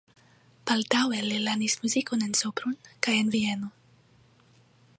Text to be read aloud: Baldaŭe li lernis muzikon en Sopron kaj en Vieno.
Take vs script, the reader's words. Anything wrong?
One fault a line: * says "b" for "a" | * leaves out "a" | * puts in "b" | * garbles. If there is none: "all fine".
all fine